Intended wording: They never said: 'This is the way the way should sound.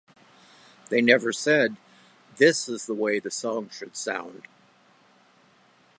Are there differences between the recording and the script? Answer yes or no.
yes